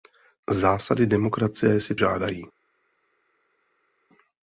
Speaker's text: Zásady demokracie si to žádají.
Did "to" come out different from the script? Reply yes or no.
yes